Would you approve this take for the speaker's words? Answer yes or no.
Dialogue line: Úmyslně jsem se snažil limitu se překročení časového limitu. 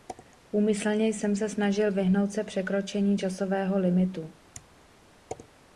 no